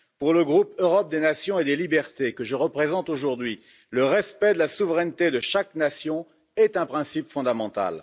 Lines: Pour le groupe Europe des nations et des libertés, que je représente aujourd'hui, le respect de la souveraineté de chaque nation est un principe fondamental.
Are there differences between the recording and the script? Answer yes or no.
no